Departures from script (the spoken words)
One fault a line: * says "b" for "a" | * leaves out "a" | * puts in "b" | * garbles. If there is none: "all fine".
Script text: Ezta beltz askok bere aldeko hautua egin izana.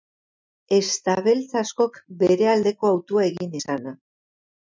all fine